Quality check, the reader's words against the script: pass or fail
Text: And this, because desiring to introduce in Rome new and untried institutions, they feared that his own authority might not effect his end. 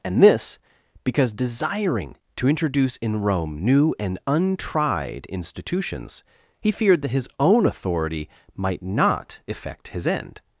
fail